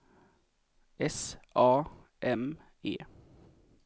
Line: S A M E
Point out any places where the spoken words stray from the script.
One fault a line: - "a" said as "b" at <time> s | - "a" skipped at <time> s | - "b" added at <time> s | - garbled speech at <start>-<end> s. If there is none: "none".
none